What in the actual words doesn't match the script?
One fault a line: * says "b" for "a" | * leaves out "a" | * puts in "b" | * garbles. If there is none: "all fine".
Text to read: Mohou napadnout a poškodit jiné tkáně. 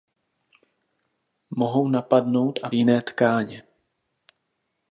* leaves out "poškodit"